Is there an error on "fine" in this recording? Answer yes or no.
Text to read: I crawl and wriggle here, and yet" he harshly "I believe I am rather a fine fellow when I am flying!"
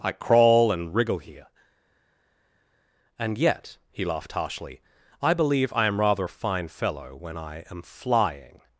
no